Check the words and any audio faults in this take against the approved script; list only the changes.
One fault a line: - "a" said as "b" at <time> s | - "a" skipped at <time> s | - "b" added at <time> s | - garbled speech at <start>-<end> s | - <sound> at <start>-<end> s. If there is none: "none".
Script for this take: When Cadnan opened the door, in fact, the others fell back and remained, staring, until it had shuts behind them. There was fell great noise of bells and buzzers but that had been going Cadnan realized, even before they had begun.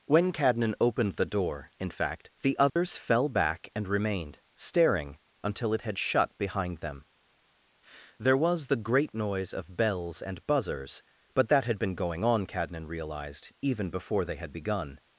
- dropout at 2.7-2.8 s
- "shuts" said as "shut" at 6.0 s
- "fell" said as "the" at 8.7 s
- "on" added at 12.2 s